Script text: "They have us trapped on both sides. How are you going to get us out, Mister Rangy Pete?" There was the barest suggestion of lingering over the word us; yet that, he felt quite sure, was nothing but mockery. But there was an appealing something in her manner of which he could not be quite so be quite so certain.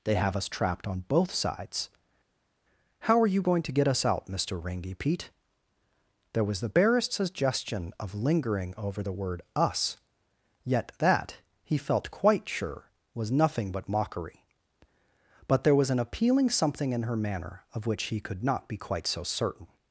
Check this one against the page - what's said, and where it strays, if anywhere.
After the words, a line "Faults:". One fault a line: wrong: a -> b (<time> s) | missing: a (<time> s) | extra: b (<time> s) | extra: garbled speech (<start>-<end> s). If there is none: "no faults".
"They have us trapped on both sides. How are you going to get us out, Mister Rangy Pete?" There was the barest suggestion of lingering over the word us; yet that, he felt quite sure, was nothing but mockery. But there was an appealing something in her manner of which he could not be quite so certain.
Faults:
missing: be quite so (19.2 s)